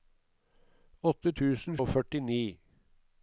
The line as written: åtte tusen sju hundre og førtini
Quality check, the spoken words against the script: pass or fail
fail